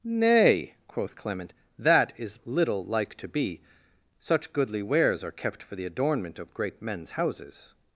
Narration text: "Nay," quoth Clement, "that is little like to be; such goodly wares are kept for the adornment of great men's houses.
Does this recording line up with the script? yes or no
yes